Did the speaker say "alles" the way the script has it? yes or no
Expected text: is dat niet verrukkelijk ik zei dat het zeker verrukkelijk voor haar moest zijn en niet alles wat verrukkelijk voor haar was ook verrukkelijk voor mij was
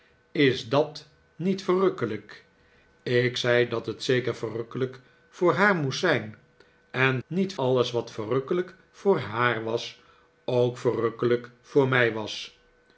yes